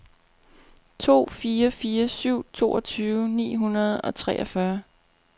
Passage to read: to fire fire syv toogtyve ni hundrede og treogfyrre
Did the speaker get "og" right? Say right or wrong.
right